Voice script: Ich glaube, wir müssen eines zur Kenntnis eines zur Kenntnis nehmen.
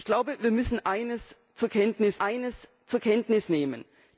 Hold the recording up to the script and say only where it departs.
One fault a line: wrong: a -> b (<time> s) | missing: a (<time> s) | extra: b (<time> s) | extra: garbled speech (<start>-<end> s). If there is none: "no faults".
no faults